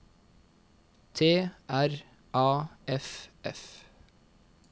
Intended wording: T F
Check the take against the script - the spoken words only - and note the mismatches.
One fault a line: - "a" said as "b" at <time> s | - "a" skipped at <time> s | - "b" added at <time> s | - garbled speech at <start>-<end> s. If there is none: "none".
- "R A F" added at 1.7 s